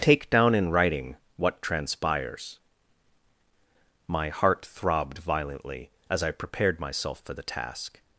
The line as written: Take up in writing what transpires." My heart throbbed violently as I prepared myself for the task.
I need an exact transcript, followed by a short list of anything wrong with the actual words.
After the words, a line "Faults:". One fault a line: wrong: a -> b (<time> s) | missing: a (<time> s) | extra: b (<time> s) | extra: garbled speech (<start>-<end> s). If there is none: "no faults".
Take down in writing what transpires." My heart throbbed violently as I prepared myself for the task.
Faults:
wrong: up -> down (0.3 s)